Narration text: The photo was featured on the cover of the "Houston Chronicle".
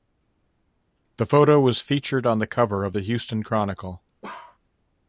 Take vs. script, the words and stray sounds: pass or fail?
fail